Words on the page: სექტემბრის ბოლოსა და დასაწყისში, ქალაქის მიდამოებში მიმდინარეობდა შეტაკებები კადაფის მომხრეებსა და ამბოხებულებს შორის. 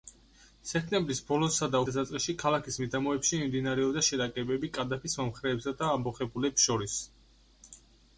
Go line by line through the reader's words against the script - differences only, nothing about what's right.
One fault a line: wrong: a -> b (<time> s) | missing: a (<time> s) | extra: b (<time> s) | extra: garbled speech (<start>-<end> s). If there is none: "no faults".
no faults